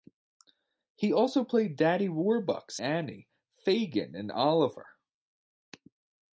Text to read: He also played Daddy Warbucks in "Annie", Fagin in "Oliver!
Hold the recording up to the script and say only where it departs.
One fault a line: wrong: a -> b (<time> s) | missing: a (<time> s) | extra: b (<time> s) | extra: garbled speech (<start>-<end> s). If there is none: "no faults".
missing: in (2.8 s)